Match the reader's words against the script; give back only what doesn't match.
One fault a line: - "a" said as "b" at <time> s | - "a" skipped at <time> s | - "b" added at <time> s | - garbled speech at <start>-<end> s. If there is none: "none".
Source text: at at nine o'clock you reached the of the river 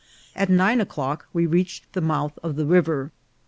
- "at" skipped at 0.5 s
- "you" said as "we" at 1.3 s
- "mouth" added at 2.0 s